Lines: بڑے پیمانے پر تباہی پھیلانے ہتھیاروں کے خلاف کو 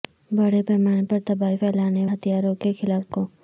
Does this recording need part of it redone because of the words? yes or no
no